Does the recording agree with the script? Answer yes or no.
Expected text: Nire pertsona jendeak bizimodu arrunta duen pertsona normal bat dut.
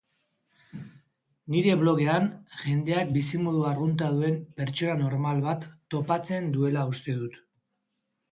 no